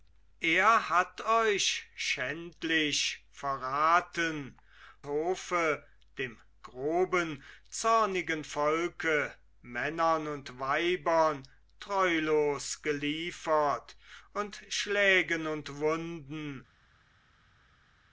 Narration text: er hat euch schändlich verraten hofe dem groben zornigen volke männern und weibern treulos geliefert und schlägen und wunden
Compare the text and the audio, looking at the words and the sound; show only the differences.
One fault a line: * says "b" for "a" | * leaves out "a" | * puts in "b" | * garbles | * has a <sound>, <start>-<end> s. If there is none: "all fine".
all fine